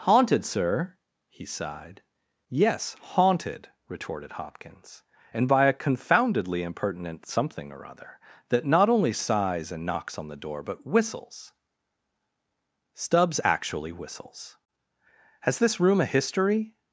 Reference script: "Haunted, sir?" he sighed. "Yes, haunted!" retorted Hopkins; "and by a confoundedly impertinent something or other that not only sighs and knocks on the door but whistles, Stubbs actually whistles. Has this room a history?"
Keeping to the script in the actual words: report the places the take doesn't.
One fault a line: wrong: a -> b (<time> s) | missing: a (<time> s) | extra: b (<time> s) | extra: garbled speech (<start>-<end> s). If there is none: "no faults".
no faults